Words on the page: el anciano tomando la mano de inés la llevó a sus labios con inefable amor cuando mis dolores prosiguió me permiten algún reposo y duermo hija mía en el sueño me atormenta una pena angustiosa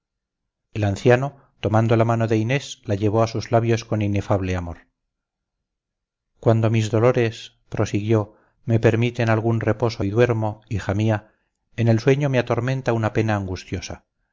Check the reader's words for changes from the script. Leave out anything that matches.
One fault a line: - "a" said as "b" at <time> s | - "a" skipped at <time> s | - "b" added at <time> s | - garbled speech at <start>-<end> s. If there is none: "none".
none